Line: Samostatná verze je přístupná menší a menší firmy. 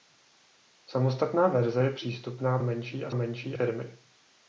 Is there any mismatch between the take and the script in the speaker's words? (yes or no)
no